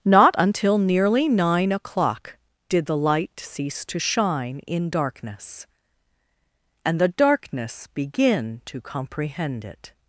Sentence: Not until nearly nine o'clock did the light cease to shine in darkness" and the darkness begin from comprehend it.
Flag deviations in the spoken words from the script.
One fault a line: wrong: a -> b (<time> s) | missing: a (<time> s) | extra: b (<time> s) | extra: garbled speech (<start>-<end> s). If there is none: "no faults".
wrong: from -> to (8.7 s)